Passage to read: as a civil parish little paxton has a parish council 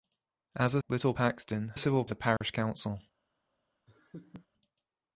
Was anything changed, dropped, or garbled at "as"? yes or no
no